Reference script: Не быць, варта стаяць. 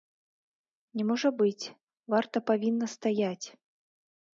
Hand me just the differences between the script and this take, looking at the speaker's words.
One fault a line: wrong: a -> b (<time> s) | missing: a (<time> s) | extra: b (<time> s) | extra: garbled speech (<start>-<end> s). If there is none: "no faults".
extra: можа (1.1 s)
extra: павінна (2.5 s)